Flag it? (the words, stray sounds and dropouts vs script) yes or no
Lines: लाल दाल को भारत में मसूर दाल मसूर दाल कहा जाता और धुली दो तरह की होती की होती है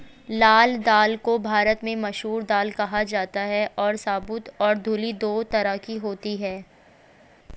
yes